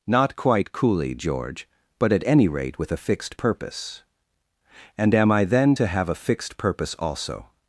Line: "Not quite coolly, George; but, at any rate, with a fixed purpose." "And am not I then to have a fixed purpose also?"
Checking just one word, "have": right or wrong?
right